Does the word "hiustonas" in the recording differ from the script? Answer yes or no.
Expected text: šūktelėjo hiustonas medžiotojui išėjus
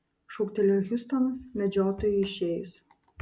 no